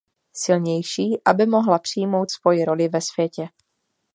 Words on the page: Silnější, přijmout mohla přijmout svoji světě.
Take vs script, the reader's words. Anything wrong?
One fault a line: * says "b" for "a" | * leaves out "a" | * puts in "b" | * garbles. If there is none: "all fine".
* says "aby" for "přijmout"
* puts in "roli ve"